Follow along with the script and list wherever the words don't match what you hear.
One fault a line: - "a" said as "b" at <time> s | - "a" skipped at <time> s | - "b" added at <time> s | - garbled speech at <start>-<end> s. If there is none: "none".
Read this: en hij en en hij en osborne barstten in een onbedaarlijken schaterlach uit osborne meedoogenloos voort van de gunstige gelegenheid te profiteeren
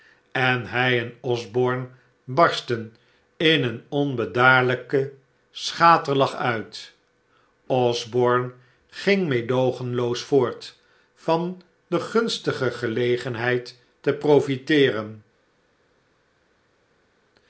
- "en hij en" skipped at 1.1 s
- "ging" added at 8.9 s